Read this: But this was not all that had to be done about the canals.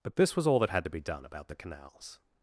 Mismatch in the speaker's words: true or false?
true